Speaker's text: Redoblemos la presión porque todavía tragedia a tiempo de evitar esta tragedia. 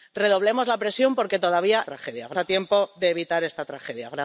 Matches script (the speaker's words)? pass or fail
pass